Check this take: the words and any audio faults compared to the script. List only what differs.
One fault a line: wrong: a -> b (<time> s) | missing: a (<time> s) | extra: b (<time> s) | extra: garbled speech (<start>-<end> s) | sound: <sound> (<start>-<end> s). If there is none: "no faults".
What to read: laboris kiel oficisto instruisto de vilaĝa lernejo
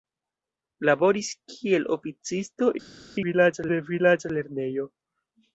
wrong: instruisto -> vilaĝa (3.3 s)